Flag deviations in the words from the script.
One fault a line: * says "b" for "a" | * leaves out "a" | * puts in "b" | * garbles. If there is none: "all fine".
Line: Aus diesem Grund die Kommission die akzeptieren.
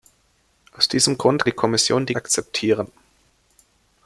all fine